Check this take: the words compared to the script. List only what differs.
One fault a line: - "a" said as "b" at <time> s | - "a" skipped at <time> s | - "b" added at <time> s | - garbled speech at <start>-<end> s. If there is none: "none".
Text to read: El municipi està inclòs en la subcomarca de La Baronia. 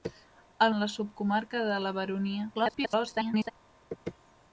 - "municipi està inclòs" skipped at 0.7 s
- garbled speech at 2.5-3.5 s